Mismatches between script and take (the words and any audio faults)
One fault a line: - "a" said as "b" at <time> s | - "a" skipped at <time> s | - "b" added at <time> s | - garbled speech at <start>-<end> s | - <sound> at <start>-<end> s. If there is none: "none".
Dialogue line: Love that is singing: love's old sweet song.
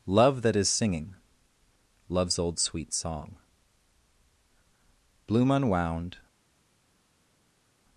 - "Bloom unwound" added at 5.3 s